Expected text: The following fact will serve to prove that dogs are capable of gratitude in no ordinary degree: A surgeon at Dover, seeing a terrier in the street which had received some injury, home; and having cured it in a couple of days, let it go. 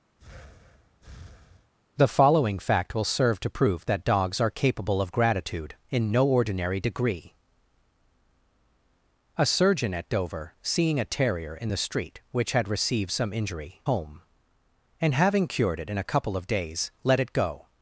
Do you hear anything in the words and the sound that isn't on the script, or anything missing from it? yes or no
yes